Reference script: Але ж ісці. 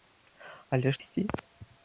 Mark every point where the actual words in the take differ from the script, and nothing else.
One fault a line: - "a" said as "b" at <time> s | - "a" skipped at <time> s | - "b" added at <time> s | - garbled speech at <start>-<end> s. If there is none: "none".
none